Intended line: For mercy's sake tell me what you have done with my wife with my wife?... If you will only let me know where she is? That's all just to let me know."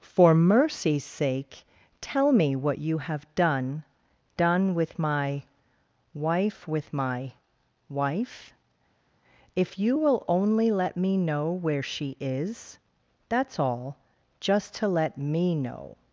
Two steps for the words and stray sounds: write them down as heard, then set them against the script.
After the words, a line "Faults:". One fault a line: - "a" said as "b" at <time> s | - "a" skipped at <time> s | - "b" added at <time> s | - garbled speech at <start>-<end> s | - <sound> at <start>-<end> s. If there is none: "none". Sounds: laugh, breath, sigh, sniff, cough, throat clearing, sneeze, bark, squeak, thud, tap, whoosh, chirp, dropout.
For mercy's sake tell me what you have done done with my wife with my wife?... If you will only let me know where she is? That's all just to let me know."
Faults:
- "done" added at 4.3 s